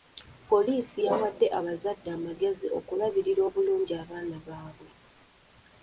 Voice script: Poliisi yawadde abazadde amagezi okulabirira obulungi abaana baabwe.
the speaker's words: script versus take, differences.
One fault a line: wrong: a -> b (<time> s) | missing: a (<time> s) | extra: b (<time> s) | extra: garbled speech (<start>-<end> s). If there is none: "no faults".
no faults